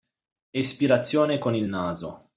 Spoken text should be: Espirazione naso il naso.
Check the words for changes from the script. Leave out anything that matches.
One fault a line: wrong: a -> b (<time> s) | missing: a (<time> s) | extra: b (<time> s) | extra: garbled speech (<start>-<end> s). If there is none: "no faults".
wrong: naso -> con (1.4 s)